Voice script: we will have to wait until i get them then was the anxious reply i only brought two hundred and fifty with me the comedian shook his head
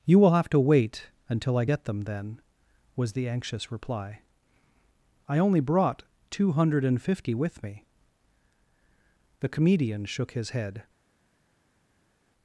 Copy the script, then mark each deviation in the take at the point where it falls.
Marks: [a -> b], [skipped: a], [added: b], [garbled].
[we -> you] will have to wait until i get them then was the anxious reply i only brought two hundred and fifty with me the comedian shook his head